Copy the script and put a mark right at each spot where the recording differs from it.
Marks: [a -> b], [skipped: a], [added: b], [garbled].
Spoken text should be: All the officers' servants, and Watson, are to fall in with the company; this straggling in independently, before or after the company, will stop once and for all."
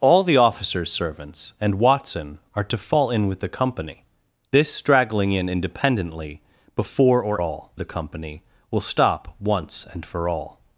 All the officers' servants, and Watson, are to fall in with the company; this straggling in independently, before or [after -> all] the company, will stop once and for all."